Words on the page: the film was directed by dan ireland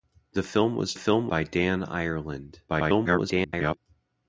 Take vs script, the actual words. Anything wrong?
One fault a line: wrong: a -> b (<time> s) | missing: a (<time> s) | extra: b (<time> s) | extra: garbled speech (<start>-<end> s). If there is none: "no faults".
wrong: directed -> film (0.9 s)
extra: garbled speech (2.7-3.8 s)